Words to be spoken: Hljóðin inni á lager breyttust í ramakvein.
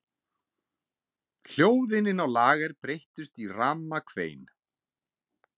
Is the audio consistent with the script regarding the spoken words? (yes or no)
yes